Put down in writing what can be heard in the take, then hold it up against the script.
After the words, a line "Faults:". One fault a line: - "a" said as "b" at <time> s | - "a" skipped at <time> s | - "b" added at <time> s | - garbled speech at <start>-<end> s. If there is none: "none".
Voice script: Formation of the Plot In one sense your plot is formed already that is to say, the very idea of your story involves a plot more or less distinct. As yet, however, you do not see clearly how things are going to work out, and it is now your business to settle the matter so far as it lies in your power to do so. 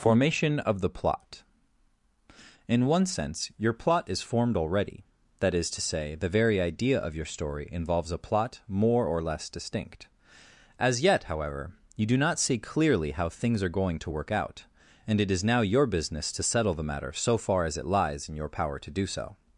Formation of the Plot In one sense your plot is formed already that is to say, the very idea of your story involves a plot more or less distinct. As yet, however, you do not see clearly how things are going to work out, and it is now your business to settle the matter so far as it lies in your power to do so.
Faults:
none